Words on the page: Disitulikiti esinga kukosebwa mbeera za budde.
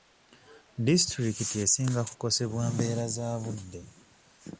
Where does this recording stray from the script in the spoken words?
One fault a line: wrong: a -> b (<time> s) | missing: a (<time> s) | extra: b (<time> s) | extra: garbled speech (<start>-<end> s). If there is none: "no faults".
no faults